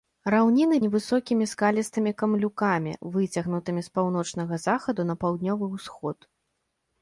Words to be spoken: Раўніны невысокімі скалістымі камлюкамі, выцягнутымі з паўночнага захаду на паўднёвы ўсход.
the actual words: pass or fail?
pass